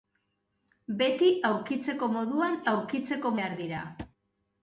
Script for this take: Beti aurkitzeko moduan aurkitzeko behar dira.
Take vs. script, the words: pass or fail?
pass